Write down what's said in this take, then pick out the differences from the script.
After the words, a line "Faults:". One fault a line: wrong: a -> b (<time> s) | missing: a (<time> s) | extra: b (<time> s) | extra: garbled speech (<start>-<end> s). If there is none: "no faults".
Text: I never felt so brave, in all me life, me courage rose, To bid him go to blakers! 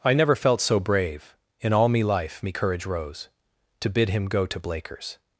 I never felt so brave, in all me life, me courage rose, To bid him go to blakers!
Faults:
no faults